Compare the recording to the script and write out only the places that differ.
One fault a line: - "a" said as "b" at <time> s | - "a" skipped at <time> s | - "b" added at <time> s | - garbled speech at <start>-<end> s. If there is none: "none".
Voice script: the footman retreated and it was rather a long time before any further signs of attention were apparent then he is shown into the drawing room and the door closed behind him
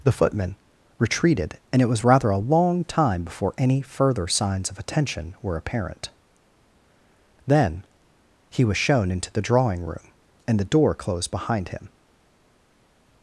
- "is" said as "was" at 8.7 s